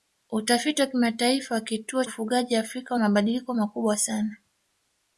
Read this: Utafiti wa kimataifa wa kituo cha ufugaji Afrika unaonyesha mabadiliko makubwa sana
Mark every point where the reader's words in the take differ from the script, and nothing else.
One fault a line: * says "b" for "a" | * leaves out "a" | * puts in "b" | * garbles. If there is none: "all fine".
* leaves out "cha"
* leaves out "unaonyesha"